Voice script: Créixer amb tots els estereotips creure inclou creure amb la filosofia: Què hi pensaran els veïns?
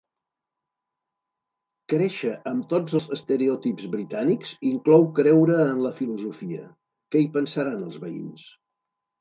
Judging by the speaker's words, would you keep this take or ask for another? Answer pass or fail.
fail